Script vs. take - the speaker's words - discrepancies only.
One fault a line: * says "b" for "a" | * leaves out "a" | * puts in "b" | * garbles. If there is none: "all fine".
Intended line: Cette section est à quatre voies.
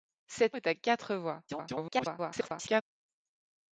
* leaves out "section"
* garbles